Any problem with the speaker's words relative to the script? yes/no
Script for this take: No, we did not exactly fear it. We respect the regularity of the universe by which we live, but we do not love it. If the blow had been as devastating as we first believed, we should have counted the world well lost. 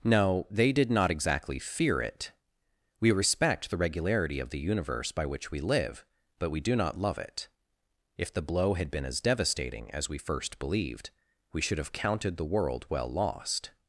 yes